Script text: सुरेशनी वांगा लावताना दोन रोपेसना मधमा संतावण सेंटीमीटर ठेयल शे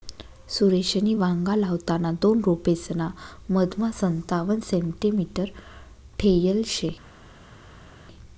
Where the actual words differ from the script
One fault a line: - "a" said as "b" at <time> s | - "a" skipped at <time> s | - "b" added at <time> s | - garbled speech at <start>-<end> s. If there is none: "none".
none